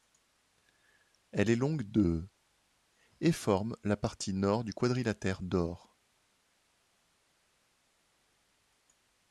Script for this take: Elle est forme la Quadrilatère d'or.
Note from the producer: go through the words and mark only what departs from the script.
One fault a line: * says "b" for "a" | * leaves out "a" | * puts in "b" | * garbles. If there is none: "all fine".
* puts in "longue de et"
* puts in "partie nord du"